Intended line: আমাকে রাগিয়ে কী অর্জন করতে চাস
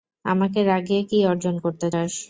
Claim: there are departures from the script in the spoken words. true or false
false